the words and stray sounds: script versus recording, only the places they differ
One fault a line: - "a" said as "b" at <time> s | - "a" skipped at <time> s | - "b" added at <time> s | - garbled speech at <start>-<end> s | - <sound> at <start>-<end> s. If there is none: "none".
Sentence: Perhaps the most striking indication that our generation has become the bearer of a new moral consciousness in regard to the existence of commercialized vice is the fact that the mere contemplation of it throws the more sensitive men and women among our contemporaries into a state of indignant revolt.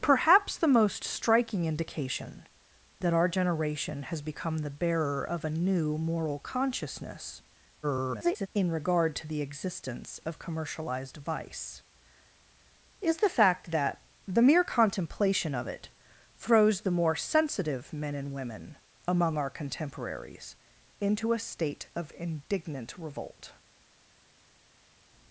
- garbled speech at 7.8-8.5 s